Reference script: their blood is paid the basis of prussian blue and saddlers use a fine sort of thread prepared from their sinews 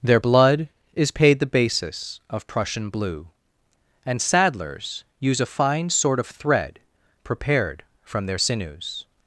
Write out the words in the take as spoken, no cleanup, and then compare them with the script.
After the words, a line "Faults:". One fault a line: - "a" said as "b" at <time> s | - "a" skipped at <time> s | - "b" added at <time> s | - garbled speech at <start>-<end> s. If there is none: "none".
their blood is paid the basis of prussian blue and saddlers use a fine sort of thread prepared from their sinews
Faults:
none